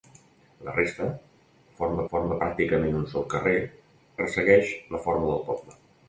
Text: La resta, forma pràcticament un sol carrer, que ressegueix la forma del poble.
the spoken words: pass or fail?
fail